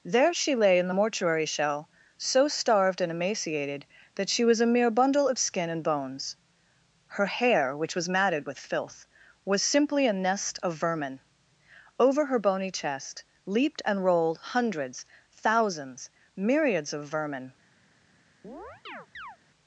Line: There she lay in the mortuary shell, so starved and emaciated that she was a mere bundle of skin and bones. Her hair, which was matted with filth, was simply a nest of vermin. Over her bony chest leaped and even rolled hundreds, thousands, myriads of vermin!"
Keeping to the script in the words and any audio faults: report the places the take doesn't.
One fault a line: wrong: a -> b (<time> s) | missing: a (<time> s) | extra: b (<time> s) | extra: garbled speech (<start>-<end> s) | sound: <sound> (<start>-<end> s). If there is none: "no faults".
missing: even (14.0 s)
sound: chirp (18.4-19.4 s)